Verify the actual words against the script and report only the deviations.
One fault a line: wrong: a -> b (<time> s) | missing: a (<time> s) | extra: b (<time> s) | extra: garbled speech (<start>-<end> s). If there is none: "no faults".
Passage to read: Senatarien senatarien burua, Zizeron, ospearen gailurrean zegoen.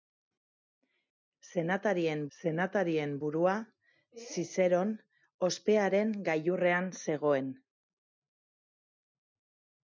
no faults